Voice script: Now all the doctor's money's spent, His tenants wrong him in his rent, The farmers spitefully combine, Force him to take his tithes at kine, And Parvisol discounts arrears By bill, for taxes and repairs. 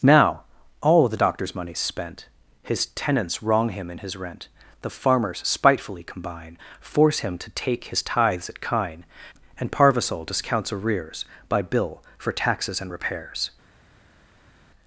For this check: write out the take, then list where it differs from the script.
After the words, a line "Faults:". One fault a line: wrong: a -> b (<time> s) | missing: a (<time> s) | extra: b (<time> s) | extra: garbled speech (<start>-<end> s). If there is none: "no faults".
Now all the doctor's money's spent, His tenants wrong him in his rent, The farmers spitefully combine, Force him to take his tithes at kine, And Parvisol discounts arrears By bill, for taxes and repairs.
Faults:
no faults